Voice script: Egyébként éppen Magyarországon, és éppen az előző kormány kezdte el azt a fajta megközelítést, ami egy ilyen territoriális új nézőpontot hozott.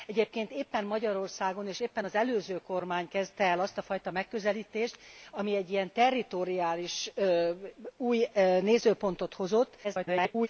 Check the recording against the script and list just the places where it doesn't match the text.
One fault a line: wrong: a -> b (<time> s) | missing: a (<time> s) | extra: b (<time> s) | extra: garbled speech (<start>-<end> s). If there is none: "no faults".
extra: garbled speech (9.8-10.5 s)